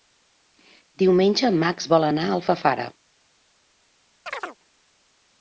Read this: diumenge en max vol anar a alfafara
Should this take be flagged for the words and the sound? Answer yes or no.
yes